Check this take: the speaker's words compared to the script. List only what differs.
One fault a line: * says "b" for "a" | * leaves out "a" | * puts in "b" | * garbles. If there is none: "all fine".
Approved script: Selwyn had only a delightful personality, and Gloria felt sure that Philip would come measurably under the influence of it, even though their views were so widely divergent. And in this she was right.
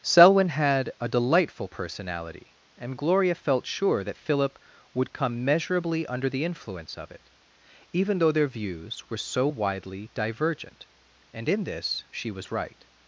* leaves out "only"